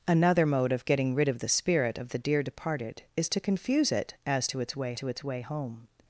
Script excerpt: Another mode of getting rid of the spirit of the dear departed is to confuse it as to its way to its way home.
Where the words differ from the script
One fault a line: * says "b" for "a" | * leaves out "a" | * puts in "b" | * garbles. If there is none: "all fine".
all fine